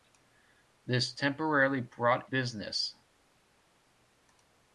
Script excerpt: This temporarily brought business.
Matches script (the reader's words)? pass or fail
pass